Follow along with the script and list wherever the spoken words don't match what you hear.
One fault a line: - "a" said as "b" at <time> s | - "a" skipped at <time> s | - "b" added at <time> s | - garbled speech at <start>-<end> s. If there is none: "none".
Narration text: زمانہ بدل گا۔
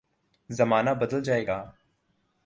- "جائے" added at 1.2 s